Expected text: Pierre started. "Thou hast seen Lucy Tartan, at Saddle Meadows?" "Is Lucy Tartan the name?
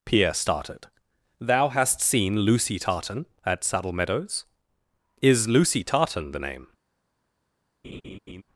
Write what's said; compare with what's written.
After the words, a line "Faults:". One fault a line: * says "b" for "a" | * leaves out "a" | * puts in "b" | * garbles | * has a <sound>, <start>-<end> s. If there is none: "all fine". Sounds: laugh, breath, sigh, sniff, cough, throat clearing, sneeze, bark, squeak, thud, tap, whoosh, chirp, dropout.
Pierre started. "Thou hast seen Lucy Tartan, at Saddle Meadows?" "Is Lucy Tartan the name?
Faults:
* has a laugh, 7.8-8.4 s